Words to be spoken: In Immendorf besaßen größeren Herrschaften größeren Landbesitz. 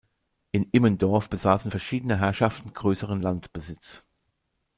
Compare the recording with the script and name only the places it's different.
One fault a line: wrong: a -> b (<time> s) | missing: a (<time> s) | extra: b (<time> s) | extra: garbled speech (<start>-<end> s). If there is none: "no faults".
wrong: größeren -> verschiedene (1.7 s)